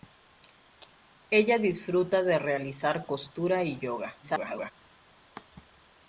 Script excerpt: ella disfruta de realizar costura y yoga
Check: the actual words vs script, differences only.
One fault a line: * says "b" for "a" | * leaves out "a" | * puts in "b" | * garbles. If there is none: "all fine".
* garbles